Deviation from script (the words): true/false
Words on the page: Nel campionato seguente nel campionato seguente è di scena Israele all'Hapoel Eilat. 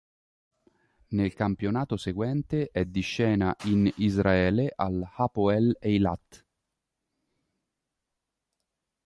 true